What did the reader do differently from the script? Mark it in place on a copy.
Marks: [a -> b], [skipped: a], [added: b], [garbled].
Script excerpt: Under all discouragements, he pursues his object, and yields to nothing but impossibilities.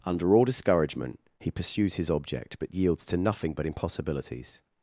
Under all [discouragements, -> discouragement] he pursues his object, [and -> but] yields to nothing but impossibilities.